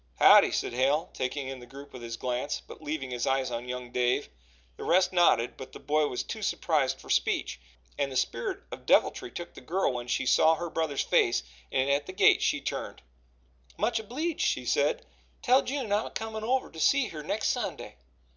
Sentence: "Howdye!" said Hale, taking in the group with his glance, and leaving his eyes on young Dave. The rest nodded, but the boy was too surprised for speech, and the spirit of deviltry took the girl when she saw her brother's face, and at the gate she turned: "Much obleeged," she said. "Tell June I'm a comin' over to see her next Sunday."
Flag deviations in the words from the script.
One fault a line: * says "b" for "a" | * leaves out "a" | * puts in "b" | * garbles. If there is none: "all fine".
* says "but" for "and"